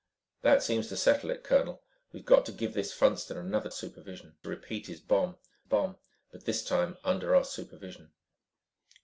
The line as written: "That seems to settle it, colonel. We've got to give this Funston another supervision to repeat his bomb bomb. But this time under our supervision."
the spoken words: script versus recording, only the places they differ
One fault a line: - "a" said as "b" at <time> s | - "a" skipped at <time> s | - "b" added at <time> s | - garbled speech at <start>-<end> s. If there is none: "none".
none